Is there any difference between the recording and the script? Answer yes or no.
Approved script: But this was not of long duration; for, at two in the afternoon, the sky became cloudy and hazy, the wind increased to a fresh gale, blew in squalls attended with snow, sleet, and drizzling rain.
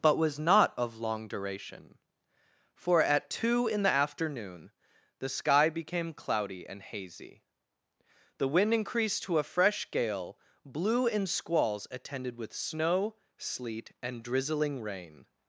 yes